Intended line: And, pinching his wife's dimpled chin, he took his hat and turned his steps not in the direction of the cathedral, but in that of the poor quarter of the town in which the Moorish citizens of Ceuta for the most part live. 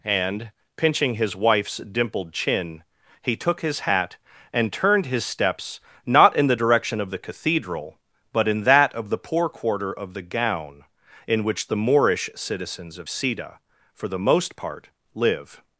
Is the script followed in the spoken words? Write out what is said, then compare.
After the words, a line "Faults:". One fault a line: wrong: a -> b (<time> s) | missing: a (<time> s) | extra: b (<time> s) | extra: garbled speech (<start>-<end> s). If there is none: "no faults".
And, pinching his wife's dimpled chin, he took his hat and turned his steps not in the direction of the cathedral, but in that of the poor quarter of the gown in which the Moorish citizens of Ceuta for the most part live.
Faults:
wrong: town -> gown (10.2 s)